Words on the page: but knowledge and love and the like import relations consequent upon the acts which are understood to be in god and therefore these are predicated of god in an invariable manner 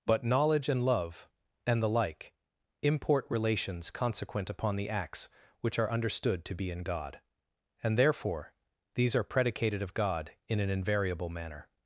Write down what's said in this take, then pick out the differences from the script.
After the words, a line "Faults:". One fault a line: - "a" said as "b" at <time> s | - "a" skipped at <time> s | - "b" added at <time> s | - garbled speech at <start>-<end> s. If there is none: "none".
but knowledge and love and the like import relations consequent upon the acts which are understood to be in god and therefore these are predicated of god in an invariable manner
Faults:
none